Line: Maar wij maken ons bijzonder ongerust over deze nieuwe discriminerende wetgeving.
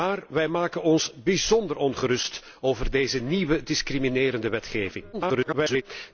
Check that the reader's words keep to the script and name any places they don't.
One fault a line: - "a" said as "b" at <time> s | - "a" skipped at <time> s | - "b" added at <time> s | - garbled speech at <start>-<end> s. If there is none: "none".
- garbled speech at 5.1-5.8 s